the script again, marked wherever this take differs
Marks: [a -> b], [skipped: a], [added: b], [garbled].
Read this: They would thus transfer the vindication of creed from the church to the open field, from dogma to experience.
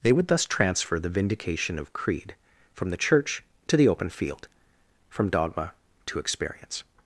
They would thus transfer the vindication of creed from the church to the open field, from dogma to experience.